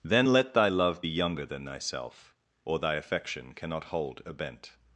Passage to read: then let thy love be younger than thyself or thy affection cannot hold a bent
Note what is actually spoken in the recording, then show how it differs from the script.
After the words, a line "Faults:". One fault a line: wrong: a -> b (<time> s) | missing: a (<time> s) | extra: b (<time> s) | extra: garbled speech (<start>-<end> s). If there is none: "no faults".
then let thy love be younger than thyself or thy affection cannot hold a bent
Faults:
no faults